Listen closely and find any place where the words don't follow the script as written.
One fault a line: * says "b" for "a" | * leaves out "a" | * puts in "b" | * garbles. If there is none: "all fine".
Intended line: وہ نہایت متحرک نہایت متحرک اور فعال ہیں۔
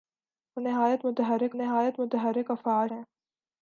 all fine